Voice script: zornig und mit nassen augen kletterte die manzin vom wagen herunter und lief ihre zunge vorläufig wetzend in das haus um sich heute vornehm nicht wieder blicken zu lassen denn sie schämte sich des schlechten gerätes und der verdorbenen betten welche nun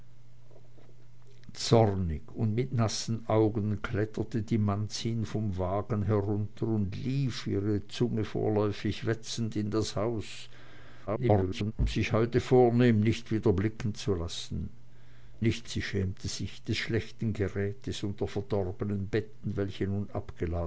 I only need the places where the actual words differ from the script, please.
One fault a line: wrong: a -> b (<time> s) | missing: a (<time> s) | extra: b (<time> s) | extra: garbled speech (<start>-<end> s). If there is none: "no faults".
extra: garbled speech (11.1-11.7 s)
wrong: denn -> nicht (15.4 s)